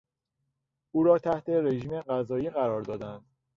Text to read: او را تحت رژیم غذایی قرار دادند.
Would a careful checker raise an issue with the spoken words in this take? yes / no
no